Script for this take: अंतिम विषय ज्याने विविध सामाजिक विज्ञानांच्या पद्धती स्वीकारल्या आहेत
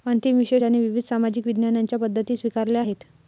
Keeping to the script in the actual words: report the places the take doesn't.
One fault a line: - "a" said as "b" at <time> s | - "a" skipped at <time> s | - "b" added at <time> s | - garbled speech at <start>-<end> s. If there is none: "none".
none